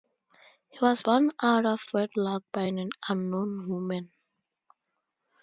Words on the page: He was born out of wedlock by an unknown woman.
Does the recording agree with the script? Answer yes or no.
yes